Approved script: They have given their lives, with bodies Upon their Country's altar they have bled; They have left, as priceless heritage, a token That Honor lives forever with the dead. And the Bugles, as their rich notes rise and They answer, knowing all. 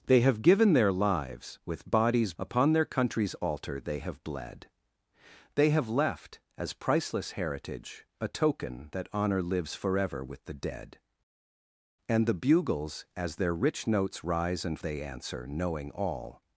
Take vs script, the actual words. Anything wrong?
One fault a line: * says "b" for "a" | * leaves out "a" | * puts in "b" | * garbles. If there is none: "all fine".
all fine